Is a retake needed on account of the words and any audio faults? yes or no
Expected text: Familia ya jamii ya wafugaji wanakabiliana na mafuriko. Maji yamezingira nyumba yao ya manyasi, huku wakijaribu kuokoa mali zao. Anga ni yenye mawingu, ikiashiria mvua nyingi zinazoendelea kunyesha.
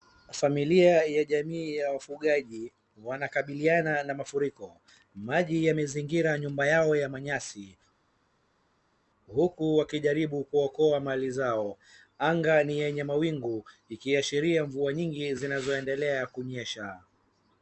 no